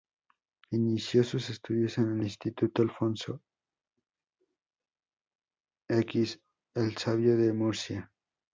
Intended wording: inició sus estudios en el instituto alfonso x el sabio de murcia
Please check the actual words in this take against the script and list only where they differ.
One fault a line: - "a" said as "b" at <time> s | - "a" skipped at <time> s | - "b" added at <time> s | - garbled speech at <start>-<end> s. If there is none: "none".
none